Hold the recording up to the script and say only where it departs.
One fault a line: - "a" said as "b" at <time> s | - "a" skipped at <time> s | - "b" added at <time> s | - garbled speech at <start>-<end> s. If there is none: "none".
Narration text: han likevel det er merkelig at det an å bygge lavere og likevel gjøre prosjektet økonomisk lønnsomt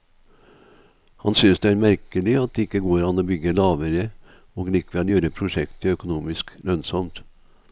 - "likevel" said as "synes" at 1.4 s
- "ikke går" added at 2.7 s